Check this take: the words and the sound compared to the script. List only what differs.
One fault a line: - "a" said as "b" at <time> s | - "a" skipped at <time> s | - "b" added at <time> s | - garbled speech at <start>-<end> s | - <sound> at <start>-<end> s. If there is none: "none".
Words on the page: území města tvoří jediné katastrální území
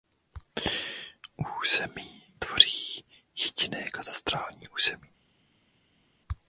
- "města" skipped at 2.2 s